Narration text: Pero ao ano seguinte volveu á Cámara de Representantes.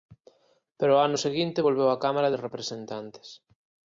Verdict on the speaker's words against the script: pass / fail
pass